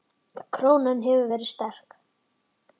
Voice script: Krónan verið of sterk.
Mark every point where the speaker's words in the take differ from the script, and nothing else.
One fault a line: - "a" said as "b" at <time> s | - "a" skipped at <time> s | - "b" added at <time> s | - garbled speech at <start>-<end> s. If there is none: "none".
- "hefur" added at 1.1 s